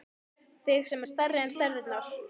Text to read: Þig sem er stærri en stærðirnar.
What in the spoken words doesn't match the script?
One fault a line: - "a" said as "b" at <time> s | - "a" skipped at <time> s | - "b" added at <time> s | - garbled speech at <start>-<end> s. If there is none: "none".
none